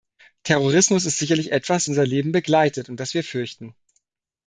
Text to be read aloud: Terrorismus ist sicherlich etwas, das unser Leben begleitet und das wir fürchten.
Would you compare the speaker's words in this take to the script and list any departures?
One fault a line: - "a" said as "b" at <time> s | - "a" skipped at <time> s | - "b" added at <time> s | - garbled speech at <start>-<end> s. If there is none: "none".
- "das" skipped at 1.9 s